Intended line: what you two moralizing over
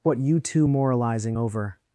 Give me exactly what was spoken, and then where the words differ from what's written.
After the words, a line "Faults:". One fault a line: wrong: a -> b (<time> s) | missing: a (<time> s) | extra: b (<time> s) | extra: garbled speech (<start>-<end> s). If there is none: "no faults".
what you two moralizing over
Faults:
no faults